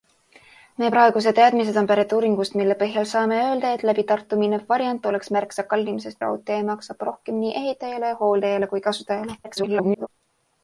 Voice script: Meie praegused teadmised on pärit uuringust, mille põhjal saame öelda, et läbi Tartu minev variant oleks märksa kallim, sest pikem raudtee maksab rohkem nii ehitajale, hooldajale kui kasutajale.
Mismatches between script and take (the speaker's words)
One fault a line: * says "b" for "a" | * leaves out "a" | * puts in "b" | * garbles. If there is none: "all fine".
* leaves out "pikem"
* garbles